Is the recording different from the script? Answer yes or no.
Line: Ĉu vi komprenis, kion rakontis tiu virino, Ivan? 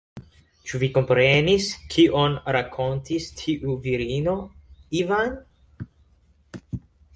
no